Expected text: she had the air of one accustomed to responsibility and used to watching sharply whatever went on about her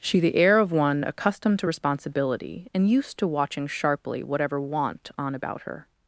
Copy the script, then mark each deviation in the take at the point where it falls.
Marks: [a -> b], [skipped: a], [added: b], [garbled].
she [skipped: had] the air of one accustomed to responsibility and used to watching sharply whatever [went -> want] on about her